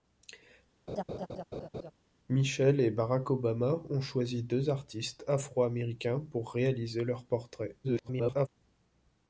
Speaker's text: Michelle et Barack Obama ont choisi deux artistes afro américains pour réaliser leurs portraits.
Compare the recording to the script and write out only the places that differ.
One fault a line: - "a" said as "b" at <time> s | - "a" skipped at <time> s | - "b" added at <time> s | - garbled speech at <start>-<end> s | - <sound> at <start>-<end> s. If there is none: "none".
- laugh at 0.9-1.9 s
- garbled speech at 7.8-8.5 s